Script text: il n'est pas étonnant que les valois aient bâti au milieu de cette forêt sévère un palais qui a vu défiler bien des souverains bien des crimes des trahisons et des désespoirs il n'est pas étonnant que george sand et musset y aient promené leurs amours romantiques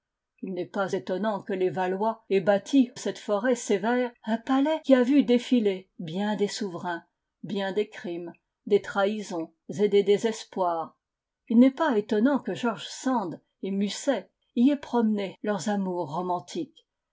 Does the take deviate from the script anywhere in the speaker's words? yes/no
yes